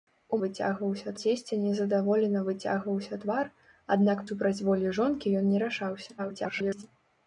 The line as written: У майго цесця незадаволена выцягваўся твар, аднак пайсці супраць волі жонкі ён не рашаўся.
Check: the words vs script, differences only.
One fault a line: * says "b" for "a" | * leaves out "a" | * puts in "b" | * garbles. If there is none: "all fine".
* says "выцягваўся" for "майго"
* leaves out "пайсці"
* garbles